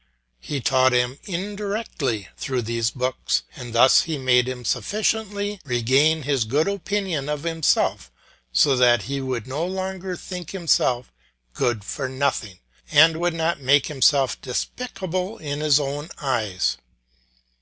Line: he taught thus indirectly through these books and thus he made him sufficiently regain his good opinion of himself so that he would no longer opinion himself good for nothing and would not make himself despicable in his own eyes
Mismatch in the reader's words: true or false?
true